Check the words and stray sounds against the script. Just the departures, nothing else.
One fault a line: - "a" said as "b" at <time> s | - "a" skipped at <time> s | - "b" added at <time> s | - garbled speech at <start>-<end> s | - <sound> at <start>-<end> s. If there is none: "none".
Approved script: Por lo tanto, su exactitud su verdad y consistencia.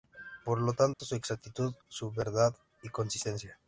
- dropout at 0.9-1.0 s